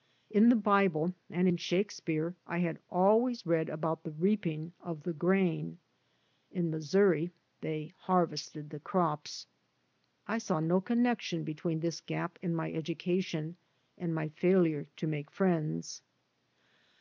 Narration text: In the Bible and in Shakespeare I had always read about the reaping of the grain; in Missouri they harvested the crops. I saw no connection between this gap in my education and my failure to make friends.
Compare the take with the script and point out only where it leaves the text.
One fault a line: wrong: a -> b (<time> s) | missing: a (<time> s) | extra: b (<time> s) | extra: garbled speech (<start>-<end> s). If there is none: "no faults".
no faults